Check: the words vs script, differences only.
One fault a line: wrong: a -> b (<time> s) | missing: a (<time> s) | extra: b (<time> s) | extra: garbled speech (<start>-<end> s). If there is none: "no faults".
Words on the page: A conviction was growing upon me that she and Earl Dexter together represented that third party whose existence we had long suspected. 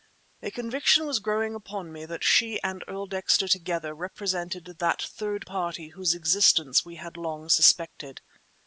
no faults